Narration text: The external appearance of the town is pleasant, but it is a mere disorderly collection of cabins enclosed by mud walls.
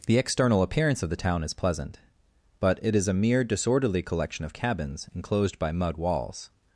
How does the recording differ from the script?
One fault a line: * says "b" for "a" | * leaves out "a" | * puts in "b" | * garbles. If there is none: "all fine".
all fine